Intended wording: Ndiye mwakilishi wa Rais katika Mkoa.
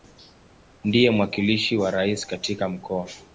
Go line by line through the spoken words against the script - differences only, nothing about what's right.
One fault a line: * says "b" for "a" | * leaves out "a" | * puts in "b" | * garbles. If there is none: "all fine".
all fine